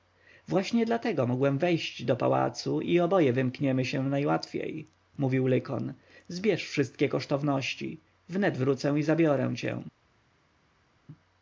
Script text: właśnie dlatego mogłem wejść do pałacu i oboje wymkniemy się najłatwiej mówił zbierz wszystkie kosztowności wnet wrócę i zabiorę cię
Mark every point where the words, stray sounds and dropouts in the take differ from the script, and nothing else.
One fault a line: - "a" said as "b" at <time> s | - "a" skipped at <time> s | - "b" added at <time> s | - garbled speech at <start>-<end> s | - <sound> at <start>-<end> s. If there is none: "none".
- "lykon" added at 5.5 s